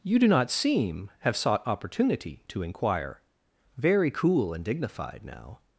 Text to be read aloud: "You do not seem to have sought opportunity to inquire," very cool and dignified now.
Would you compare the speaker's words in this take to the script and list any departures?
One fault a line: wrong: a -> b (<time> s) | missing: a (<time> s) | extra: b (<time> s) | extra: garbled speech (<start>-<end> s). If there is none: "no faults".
missing: to (1.1 s)